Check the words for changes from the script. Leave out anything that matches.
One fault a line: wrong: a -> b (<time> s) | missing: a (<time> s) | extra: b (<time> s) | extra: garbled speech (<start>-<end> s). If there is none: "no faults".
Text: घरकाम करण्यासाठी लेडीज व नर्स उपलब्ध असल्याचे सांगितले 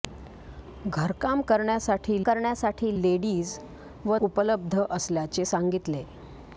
extra: करण्यासाठी (2.2 s)
missing: नर्स (4.2 s)